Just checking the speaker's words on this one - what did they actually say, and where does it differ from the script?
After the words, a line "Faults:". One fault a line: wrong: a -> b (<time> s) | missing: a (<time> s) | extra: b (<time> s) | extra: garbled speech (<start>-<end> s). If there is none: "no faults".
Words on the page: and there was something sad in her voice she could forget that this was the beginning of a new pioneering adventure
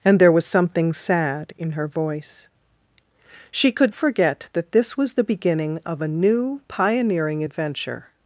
and there was something sad in her voice she could forget that this was the beginning of a new pioneering adventure
Faults:
no faults